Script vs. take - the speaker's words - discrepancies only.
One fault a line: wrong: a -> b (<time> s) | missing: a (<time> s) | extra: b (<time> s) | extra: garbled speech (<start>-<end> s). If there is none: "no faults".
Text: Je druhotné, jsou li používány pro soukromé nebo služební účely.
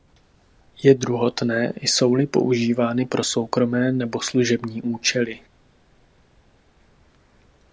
no faults